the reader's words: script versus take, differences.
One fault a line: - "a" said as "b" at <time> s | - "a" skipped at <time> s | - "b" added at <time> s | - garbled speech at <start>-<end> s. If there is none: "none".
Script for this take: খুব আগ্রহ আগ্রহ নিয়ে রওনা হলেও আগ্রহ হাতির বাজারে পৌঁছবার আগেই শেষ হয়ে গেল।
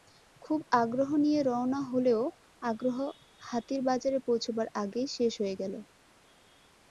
- "আগ্রহ" skipped at 1.1 s